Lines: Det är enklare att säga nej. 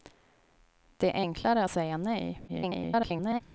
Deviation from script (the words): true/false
true